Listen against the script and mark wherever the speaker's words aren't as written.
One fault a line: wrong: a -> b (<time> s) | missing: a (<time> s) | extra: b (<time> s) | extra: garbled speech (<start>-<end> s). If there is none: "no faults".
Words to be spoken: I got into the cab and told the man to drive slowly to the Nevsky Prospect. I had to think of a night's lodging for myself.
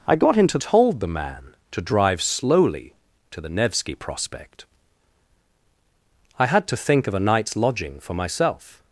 missing: the cab and (0.6 s)